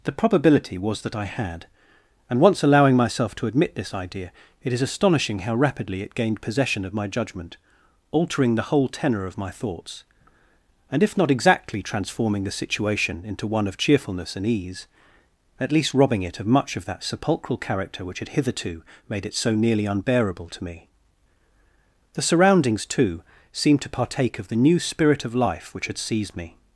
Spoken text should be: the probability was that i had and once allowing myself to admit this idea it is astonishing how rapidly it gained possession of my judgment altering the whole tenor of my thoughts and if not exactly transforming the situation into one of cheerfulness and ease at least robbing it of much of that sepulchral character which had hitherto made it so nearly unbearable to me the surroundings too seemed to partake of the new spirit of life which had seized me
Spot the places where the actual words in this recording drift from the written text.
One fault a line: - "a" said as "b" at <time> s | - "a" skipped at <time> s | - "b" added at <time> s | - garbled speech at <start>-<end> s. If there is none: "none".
none